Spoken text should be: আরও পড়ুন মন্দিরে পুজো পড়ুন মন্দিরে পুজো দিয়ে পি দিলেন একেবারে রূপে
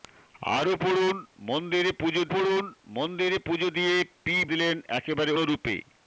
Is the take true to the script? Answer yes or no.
yes